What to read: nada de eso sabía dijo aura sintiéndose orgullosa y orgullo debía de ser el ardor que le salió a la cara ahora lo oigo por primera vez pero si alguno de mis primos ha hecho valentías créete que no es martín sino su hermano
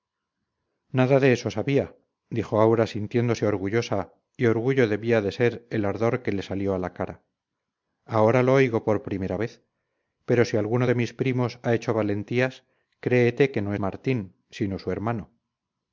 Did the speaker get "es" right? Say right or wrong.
wrong